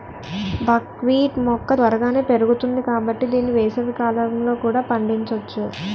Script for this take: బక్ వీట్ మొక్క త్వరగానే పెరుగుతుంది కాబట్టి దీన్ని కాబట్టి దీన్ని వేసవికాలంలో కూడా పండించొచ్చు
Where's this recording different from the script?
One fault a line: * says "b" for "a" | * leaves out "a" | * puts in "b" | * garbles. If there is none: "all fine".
* leaves out "కాబట్టి దీన్ని"